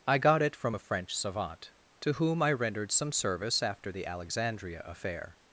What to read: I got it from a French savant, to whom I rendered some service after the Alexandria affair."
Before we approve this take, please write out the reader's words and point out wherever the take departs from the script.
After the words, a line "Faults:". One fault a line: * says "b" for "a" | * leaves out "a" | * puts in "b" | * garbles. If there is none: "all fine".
I got it from a French savant, to whom I rendered some service after the Alexandria affair."
Faults:
all fine